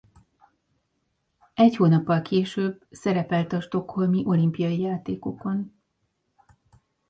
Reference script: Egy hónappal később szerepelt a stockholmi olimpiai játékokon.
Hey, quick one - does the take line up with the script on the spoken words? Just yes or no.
yes